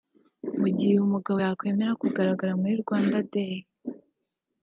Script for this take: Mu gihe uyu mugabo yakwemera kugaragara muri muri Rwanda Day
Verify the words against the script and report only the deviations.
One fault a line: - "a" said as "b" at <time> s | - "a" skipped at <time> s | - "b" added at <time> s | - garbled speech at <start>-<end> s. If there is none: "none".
- "muri" skipped at 2.7 s